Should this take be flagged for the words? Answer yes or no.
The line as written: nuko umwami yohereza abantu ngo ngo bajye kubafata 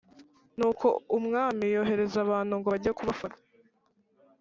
yes